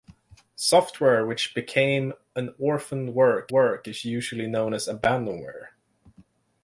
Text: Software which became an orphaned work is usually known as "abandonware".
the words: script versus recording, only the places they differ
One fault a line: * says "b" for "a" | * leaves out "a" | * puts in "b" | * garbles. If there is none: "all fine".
* puts in "work"